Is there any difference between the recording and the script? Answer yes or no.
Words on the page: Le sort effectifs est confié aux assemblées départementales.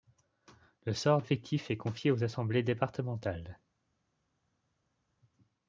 no